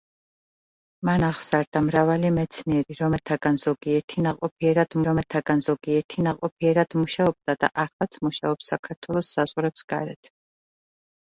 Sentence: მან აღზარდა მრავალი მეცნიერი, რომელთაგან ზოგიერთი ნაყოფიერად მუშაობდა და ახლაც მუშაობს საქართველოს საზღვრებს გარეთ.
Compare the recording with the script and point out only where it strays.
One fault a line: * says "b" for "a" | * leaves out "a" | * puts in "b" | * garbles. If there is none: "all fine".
* puts in "რომელთაგან ზოგიერთი ნაყოფიერად"